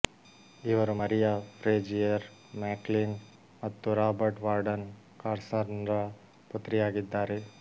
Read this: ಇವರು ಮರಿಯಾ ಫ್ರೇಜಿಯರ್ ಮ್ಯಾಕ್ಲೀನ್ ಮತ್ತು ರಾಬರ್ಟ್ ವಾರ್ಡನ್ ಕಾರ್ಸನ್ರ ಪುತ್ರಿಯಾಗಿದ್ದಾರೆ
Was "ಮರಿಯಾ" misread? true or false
false